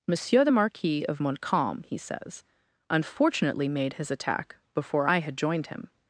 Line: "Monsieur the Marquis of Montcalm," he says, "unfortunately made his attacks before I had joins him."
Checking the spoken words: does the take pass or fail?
fail